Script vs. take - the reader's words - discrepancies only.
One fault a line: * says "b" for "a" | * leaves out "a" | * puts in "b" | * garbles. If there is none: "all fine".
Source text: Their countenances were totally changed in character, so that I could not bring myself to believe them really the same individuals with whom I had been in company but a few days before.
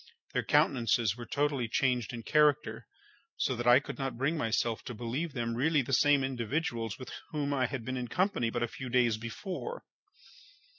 all fine